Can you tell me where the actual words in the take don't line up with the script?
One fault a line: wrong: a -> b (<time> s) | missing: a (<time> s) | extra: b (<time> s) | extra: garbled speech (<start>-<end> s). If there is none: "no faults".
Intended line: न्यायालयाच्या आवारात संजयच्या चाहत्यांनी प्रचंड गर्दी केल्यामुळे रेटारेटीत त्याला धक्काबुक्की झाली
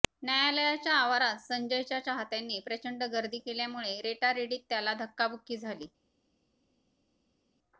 no faults